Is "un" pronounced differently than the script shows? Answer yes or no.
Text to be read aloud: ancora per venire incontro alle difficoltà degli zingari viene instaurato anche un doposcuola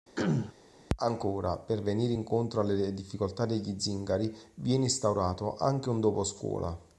no